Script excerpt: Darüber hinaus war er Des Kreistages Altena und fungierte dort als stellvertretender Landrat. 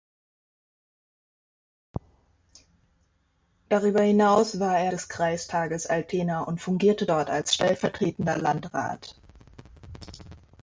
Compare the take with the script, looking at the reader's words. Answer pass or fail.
pass